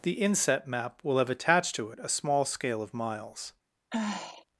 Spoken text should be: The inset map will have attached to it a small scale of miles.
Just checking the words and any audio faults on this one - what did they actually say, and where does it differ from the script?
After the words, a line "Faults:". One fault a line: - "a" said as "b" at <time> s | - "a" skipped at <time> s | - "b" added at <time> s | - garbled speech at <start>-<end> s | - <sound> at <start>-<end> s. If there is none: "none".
The inset map will have attached to it a small scale of miles.
Faults:
- sigh at 3.9-4.5 s